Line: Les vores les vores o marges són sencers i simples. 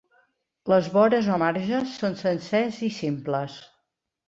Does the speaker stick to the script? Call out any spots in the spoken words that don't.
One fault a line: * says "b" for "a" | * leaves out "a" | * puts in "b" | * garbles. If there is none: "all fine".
* leaves out "les vores"